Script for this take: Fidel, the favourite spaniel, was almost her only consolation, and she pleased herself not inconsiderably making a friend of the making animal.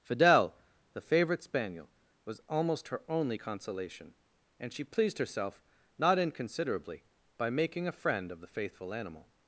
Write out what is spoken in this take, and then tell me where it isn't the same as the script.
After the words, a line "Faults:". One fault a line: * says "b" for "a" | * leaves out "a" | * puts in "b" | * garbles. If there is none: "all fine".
Fidel, the favourite spaniel, was almost her only consolation, and she pleased herself not inconsiderably by making a friend of the faithful animal.
Faults:
* puts in "by"
* says "faithful" for "making"